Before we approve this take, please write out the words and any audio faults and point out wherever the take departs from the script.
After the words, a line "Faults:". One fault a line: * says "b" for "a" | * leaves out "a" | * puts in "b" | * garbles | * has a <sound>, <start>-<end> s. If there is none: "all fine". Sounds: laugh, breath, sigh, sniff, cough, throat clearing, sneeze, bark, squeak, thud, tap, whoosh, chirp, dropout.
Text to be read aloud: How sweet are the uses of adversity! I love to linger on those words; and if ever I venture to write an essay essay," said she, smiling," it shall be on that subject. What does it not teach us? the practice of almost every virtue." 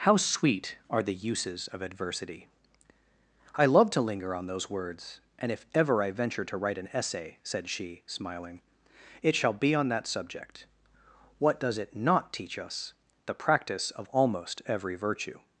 How sweet are the uses of adversity! I love to linger on those words; and if ever I venture to write an essay," said she, smiling," it shall be on that subject. What does it not teach us? the practice of almost every virtue."
Faults:
* leaves out "essay"